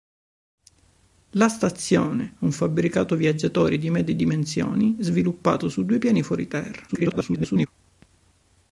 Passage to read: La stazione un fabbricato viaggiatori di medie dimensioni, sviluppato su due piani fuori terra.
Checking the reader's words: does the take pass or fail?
fail